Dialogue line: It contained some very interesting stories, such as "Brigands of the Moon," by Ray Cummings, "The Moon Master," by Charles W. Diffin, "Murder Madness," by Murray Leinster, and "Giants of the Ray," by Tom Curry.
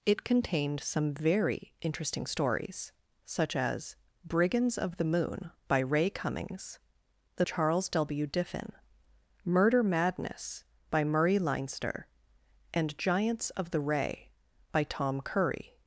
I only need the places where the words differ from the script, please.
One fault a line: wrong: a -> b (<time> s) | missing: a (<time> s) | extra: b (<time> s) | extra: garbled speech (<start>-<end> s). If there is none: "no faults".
missing: Moon Master by (7.5 s)